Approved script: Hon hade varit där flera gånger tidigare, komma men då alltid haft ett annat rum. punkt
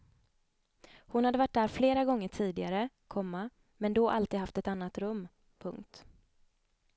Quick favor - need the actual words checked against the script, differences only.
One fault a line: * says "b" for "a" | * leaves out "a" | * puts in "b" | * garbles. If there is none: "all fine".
all fine